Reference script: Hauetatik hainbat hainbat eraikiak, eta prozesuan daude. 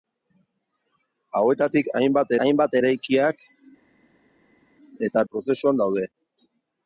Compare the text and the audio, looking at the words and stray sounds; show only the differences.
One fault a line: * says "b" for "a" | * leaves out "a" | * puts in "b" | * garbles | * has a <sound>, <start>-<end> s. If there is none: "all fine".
all fine